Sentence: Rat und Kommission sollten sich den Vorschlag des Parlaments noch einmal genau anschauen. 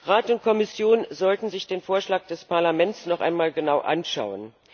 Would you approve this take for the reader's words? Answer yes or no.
yes